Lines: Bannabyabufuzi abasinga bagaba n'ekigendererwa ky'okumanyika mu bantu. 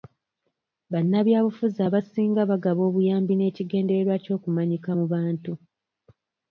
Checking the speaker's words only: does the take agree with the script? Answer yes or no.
no